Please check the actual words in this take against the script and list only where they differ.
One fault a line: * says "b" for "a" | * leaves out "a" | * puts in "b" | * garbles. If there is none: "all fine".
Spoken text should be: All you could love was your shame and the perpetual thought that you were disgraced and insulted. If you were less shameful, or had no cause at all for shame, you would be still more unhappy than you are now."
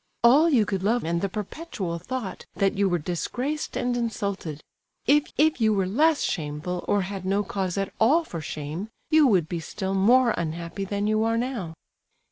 * leaves out "was your shame"
* puts in "if"